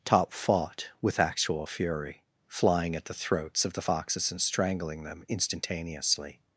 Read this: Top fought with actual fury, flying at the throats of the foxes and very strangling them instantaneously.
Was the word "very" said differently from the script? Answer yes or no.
yes